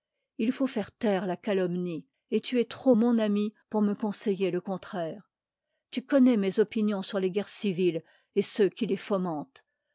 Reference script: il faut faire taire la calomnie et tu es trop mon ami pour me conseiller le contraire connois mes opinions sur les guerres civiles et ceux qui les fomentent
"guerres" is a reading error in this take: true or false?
false